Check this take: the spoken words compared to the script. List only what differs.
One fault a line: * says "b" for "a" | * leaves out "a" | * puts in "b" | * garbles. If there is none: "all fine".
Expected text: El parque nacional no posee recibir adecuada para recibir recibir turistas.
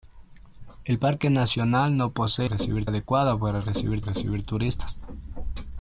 all fine